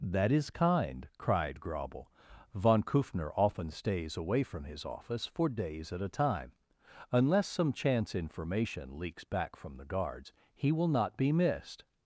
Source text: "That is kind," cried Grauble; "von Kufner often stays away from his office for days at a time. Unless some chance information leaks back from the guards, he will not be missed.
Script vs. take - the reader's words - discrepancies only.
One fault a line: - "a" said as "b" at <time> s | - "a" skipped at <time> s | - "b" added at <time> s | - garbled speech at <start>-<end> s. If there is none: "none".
none